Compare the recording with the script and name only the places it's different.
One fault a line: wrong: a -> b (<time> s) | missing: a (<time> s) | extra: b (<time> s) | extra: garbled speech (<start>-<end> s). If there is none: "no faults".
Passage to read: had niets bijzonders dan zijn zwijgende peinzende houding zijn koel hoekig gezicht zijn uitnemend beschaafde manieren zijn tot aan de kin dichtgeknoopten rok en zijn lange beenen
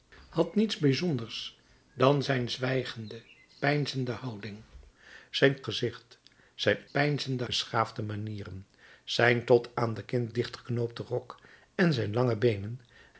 missing: koel hoekig (5.6 s)
wrong: uitnemend -> peinzende (6.9 s)